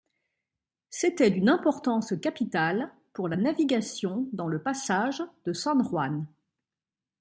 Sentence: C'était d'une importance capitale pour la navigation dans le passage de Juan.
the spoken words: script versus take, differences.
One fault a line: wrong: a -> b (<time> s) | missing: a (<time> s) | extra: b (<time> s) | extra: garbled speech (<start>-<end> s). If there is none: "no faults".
extra: San (5.5 s)